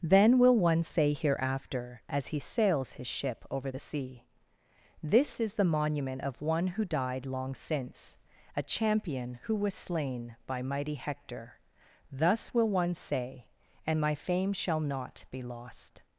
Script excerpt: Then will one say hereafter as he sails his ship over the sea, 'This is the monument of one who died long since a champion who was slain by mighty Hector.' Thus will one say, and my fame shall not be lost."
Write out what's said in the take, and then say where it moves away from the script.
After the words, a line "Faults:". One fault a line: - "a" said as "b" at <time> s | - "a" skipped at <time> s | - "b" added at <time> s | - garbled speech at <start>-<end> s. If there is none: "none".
Then will one say hereafter as he sails his ship over the sea, 'This is the monument of one who died long since a champion who was slain by mighty Hector.' Thus will one say, and my fame shall not be lost."
Faults:
none